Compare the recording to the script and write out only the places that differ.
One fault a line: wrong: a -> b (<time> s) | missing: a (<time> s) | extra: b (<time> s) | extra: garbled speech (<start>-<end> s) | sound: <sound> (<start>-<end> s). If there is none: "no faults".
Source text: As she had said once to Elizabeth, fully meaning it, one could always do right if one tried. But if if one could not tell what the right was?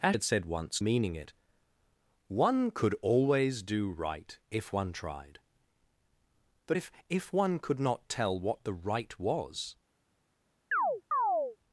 missing: she (0.2 s)
missing: to Elizabeth fully (0.8 s)
sound: chirp (10.7-11.6 s)